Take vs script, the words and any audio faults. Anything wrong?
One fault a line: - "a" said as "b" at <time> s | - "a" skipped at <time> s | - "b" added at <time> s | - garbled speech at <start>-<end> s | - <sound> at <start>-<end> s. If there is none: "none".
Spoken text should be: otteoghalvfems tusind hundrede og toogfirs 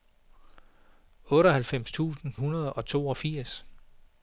none